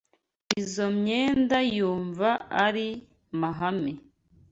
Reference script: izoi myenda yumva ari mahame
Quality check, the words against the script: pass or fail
pass